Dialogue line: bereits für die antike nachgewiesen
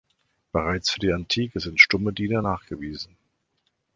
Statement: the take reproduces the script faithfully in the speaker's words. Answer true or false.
false